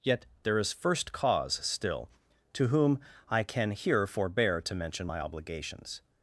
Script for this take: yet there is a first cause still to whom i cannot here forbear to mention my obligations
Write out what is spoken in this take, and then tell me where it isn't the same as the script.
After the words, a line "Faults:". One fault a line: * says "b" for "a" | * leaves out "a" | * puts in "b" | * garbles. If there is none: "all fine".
yet there is first cause still to whom i can here forbear to mention my obligations
Faults:
* leaves out "a"
* says "can" for "cannot"